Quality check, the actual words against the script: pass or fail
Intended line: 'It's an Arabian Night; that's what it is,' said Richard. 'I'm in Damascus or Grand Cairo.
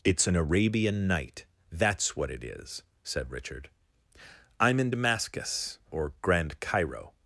pass